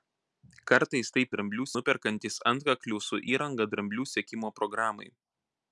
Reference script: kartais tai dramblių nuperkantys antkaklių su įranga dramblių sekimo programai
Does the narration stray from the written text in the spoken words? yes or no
no